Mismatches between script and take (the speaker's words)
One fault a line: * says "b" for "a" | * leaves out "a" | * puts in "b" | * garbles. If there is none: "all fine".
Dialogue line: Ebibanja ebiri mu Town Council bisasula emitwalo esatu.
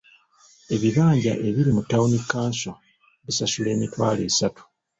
all fine